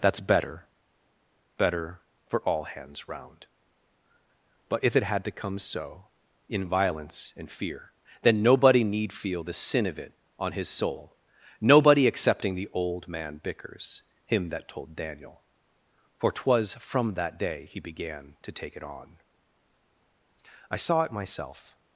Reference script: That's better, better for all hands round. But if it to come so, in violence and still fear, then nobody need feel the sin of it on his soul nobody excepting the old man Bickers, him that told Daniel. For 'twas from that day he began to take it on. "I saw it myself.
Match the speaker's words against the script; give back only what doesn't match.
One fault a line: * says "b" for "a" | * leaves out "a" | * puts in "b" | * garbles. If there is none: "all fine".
* puts in "had"
* leaves out "still"